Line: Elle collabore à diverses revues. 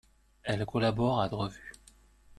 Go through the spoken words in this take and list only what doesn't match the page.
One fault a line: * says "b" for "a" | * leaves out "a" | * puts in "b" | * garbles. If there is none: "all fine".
* leaves out "diverses"